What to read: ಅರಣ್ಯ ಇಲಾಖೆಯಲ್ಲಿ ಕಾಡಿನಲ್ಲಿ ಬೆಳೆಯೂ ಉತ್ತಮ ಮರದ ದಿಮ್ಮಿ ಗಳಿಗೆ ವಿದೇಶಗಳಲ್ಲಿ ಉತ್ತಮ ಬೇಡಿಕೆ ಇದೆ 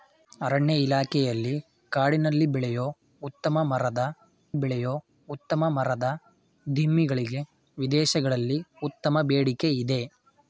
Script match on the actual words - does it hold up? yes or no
no